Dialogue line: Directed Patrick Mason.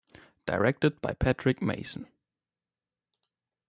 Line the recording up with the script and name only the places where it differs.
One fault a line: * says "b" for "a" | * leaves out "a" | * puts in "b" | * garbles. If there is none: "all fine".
* puts in "by"